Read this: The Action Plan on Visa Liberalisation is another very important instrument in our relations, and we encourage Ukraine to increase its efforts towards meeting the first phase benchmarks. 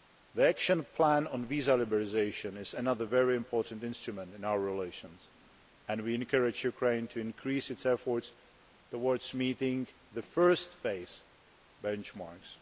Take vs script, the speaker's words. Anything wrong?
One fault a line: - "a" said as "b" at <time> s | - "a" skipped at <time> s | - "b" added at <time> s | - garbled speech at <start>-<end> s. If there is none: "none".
none